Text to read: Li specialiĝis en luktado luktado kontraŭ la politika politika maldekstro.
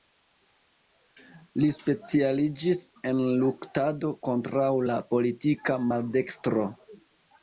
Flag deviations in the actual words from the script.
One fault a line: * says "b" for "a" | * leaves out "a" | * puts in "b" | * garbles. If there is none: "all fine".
* leaves out "luktado"
* leaves out "politika"